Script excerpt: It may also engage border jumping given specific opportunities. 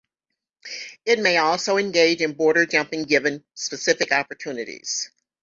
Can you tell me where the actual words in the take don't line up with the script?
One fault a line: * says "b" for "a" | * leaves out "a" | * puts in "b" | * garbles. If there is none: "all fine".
* puts in "in"